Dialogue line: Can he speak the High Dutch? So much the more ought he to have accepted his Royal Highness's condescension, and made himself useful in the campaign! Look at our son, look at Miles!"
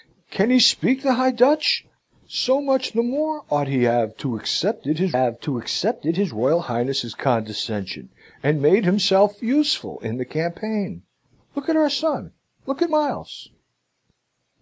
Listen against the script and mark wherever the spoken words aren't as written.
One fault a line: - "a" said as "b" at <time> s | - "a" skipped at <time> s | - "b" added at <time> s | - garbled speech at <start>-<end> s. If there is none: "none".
- "have accepted his" added at 5.1 s